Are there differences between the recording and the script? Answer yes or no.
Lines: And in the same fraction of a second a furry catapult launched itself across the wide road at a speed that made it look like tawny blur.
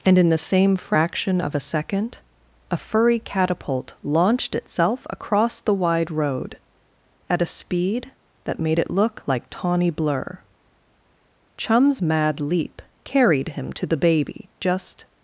yes